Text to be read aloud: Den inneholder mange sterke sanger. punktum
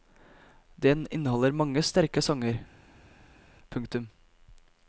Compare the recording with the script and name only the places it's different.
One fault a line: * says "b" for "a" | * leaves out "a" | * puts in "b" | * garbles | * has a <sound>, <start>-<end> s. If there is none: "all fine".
all fine